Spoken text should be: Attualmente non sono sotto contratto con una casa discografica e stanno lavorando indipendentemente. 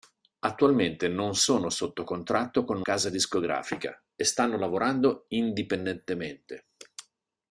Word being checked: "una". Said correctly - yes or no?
no